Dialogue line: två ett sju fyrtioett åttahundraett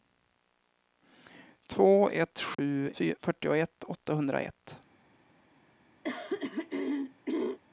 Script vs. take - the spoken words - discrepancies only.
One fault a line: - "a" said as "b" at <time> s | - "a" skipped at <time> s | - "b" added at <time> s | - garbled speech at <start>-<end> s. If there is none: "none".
none